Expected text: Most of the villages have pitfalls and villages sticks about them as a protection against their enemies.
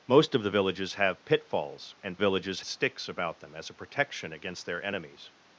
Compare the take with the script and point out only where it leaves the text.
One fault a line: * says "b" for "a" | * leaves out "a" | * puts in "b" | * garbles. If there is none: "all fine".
all fine